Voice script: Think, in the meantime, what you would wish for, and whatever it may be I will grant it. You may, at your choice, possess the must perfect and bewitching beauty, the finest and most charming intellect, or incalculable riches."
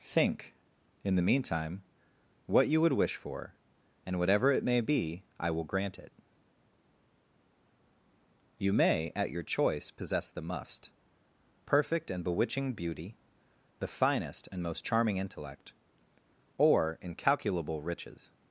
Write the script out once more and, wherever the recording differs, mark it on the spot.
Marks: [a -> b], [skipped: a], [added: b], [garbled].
Think, in the meantime, what you would wish for, and whatever it may be I will grant it. You may, at your choice, possess the must perfect and bewitching beauty, the finest and most charming intellect, or incalculable riches."